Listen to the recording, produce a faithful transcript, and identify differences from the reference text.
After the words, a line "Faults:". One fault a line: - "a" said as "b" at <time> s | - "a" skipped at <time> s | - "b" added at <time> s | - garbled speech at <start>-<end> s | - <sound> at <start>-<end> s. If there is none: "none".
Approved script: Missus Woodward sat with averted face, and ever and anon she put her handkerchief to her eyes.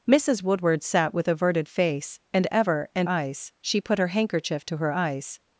Missus Woodward sat with averted face, and ever and eyes she put her handkerchief to her eyes.
Faults:
- "anon" said as "eyes" at 3.0 s